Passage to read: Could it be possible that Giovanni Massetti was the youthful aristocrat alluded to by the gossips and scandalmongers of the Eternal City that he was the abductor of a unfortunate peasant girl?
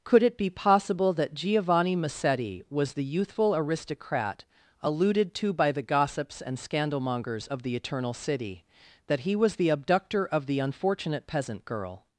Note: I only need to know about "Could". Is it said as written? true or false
true